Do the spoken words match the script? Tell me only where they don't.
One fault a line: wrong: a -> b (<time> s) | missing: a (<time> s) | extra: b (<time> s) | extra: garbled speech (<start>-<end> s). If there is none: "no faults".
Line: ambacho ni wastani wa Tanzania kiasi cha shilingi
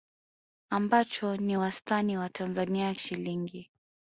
missing: kiasi cha (2.9 s)